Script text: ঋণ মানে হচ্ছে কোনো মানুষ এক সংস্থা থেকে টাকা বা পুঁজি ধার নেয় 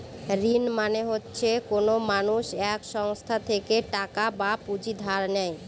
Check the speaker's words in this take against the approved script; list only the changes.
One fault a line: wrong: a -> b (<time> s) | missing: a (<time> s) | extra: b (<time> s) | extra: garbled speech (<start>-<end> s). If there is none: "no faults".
no faults